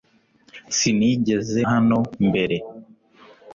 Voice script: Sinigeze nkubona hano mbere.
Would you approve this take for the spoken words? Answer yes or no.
no